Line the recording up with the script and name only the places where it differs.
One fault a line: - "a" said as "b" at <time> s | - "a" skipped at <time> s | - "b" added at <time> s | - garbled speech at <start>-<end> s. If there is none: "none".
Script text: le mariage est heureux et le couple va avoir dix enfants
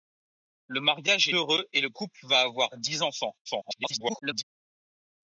- "est" skipped at 1.3 s
- garbled speech at 3.5-4.4 s